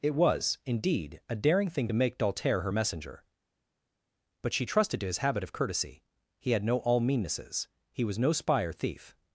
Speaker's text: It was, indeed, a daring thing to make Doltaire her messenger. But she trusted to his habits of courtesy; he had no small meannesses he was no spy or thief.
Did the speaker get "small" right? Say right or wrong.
wrong